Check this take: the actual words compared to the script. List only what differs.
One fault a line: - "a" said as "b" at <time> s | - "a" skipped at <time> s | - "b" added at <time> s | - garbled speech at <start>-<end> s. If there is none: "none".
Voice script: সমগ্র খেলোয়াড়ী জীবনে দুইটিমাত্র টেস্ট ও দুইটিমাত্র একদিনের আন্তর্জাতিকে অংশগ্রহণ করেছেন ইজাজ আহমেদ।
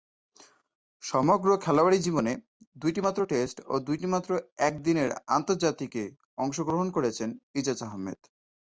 none